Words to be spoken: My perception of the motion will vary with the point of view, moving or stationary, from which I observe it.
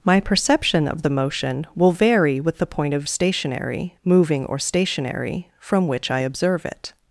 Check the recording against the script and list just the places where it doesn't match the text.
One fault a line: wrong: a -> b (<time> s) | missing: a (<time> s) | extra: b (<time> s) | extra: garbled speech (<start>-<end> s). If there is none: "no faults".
wrong: view -> stationary (3.1 s)